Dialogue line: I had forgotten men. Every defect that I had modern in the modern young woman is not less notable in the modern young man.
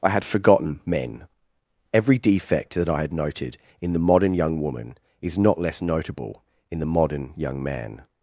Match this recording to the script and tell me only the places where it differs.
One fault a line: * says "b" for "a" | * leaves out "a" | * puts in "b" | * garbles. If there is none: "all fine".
* says "noted" for "modern"